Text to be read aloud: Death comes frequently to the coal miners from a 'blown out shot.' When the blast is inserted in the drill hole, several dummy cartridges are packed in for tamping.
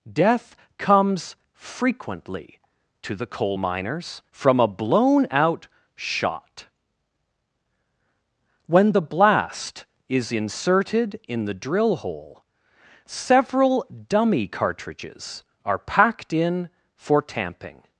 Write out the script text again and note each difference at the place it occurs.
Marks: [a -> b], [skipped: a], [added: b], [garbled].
Death comes frequently to the coal miners from a 'blown out shot.' When the blast is inserted in the drill hole, several dummy cartridges are packed in for tamping.